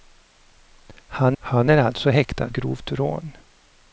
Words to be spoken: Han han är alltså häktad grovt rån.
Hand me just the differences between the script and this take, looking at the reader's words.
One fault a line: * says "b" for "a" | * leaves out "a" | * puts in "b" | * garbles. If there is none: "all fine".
all fine